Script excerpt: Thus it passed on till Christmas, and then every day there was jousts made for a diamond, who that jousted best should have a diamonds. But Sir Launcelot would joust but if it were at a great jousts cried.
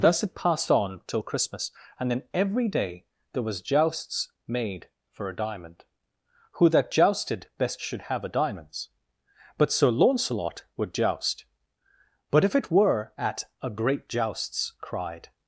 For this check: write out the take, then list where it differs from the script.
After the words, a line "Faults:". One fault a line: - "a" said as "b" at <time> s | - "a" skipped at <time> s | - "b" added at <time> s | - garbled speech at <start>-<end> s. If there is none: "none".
Thus it passed on till Christmas, and then every day there was jousts made for a diamond, who that jousted best should have a diamonds. But Sir Launcelot would joust but if it were at a great jousts cried.
Faults:
none